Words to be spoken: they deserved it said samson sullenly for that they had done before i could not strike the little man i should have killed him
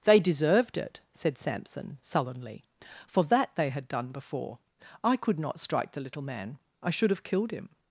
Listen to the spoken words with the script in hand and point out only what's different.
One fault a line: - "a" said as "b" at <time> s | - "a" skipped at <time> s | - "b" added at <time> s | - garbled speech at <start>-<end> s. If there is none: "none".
none